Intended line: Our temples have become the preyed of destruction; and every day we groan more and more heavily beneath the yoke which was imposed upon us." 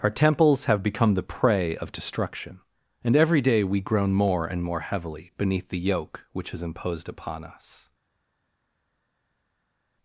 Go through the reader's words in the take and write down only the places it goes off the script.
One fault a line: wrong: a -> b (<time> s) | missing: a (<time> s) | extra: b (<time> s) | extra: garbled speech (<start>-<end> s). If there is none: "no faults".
wrong: preyed -> prey (1.2 s)
wrong: was -> is (6.5 s)